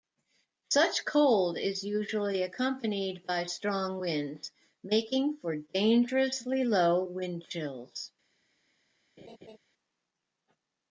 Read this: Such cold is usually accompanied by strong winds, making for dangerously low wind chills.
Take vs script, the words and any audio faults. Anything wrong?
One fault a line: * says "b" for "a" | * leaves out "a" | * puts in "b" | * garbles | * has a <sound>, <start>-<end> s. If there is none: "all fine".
* has a laugh, 9.2-9.6 s